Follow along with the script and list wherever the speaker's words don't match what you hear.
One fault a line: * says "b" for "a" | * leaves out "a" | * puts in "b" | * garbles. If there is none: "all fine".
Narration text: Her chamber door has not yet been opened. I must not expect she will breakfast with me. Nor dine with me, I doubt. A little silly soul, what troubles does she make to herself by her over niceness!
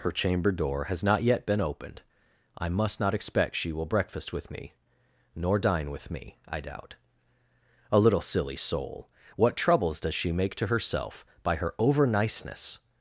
all fine